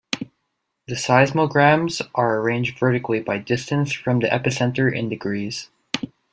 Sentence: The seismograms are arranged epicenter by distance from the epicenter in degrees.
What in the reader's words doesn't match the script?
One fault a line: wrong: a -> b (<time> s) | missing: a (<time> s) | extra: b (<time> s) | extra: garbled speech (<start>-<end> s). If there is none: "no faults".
wrong: epicenter -> vertically (2.8 s)